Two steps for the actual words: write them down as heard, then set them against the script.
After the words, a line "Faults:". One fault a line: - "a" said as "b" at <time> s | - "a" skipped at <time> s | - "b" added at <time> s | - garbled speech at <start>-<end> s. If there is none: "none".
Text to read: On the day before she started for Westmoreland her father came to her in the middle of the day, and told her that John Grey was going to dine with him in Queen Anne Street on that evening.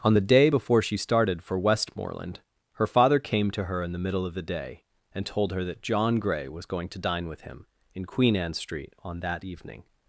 On the day before she started for Westmoreland her father came to her in the middle of the day, and told her that John Grey was going to dine with him in Queen Anne Street on that evening.
Faults:
none